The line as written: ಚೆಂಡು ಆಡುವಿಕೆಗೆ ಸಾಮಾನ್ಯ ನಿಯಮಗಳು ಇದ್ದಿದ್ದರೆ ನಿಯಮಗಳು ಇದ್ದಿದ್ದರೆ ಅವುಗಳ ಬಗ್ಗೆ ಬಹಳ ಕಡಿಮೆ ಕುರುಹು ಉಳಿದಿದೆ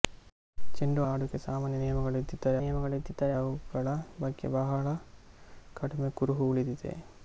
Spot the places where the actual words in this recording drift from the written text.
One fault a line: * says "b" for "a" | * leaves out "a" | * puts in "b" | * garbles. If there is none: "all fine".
all fine